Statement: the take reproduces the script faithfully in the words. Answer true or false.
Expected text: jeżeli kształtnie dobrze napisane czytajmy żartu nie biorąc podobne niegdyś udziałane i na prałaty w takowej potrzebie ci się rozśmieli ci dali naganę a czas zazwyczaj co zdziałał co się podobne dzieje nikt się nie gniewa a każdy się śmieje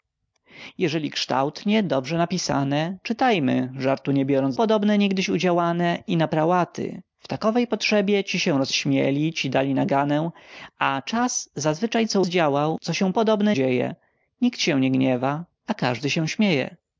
true